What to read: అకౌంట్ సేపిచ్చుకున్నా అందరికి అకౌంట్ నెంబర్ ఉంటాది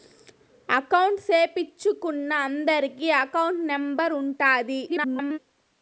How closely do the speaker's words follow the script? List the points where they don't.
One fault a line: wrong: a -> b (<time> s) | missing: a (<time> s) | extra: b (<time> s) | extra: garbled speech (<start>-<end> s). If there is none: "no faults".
extra: garbled speech (4.9-5.4 s)